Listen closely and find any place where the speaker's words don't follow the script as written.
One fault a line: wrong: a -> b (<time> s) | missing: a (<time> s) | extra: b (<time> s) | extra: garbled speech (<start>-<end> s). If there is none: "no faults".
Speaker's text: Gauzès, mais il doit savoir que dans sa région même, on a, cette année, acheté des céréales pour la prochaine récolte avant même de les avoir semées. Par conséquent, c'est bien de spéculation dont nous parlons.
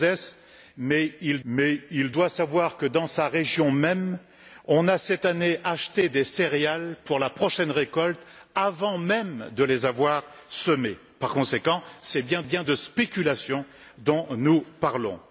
extra: mais il (1.4 s)
extra: bien (12.4 s)